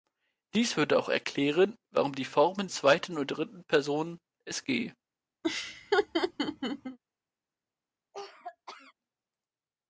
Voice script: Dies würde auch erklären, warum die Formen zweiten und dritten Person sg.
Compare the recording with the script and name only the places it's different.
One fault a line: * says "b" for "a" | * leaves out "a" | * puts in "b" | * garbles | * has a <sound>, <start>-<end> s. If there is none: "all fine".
* has a laugh, 5.4-7.0 s
* has a cough, 8.1-8.9 s